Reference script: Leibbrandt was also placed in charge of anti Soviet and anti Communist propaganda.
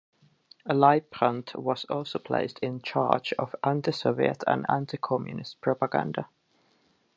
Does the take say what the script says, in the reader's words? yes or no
yes